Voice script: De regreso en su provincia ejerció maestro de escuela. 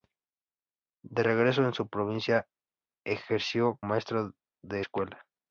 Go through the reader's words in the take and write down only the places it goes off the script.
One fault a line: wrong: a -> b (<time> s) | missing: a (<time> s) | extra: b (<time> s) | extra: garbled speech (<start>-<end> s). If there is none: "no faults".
no faults